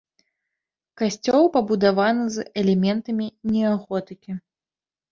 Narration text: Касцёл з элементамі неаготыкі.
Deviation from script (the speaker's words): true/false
true